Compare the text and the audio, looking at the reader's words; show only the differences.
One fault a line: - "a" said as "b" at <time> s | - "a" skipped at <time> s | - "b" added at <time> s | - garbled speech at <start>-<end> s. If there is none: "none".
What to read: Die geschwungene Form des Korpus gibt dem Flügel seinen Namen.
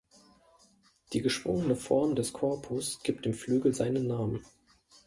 none